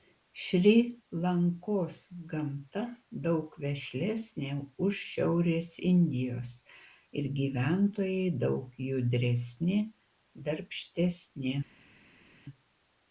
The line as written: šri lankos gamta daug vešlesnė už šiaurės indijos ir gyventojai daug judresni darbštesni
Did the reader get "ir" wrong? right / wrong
right